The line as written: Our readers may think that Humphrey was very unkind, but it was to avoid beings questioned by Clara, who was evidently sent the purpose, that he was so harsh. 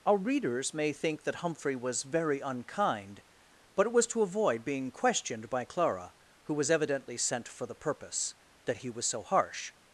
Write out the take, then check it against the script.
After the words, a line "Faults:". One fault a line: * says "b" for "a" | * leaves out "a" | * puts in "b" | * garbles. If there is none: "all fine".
Our readers may think that Humphrey was very unkind, but it was to avoid being questioned by Clara, who was evidently sent for the purpose, that he was so harsh.
Faults:
* says "being" for "beings"
* puts in "for"